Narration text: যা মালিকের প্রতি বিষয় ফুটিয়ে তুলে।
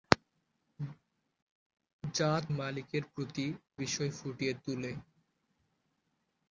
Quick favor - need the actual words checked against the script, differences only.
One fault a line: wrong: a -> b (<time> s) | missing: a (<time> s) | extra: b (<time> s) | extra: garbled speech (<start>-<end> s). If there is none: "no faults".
no faults